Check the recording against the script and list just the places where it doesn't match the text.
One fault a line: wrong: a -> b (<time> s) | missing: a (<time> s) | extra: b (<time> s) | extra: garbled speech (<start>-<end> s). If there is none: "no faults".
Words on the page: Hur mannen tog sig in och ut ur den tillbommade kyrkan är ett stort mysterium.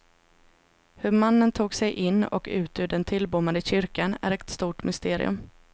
no faults